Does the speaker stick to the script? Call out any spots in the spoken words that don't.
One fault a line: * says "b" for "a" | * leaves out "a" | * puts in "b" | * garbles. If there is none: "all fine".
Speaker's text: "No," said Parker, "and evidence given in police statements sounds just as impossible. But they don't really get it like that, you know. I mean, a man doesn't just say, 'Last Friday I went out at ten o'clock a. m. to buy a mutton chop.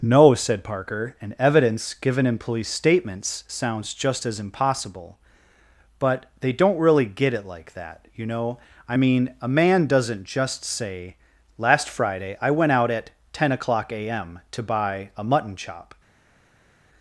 all fine